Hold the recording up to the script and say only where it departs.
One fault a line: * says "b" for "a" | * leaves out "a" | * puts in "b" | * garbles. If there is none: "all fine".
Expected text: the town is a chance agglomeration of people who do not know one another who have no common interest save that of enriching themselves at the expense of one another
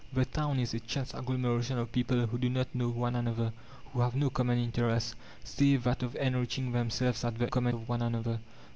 * says "common" for "expense"